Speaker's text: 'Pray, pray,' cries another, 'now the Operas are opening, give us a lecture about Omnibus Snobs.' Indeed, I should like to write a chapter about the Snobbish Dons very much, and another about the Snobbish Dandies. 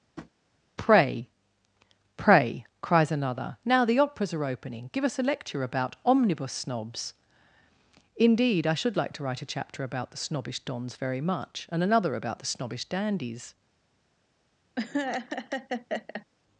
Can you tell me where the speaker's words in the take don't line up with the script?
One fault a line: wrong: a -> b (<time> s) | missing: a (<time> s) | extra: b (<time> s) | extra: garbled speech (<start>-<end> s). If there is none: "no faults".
no faults